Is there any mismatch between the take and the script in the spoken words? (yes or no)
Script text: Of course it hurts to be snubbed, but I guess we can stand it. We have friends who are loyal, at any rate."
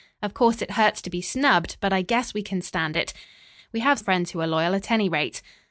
no